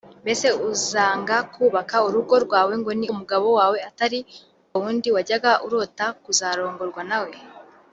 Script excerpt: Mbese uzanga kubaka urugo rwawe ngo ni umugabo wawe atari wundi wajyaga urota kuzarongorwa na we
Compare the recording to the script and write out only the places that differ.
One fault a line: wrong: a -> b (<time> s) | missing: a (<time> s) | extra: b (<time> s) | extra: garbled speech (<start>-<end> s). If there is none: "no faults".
no faults